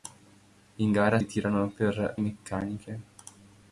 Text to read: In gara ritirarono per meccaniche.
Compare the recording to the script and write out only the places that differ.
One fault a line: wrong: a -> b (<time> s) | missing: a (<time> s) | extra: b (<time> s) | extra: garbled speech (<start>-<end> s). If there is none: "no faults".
no faults